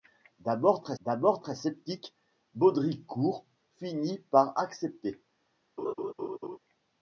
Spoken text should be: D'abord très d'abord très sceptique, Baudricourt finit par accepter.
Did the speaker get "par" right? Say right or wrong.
right